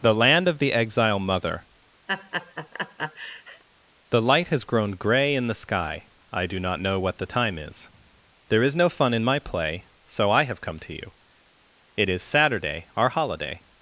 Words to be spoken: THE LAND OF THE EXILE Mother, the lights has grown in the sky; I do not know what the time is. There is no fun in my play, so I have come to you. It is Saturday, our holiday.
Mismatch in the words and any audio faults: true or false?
true